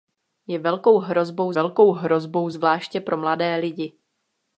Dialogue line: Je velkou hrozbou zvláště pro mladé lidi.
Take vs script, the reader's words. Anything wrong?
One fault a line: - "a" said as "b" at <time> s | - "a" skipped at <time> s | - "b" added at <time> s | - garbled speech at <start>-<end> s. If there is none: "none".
- "velkou hrozbou" added at 1.5 s